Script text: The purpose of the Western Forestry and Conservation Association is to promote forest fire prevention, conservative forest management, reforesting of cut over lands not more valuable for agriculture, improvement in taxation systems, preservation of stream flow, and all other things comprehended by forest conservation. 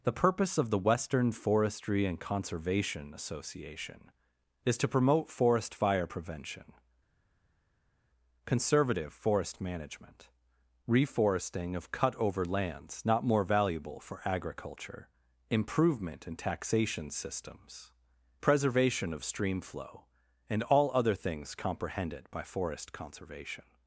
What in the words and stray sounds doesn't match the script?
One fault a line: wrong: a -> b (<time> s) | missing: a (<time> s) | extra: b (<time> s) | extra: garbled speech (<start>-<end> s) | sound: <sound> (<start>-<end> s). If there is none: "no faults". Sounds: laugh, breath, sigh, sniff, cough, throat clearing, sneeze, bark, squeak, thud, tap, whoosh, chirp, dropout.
no faults